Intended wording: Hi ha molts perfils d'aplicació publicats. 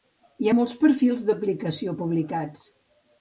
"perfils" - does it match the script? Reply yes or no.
yes